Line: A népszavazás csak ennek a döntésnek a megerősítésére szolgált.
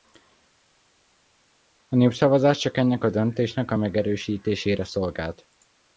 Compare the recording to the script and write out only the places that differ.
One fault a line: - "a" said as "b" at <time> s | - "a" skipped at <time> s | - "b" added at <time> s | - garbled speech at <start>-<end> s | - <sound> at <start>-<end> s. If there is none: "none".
none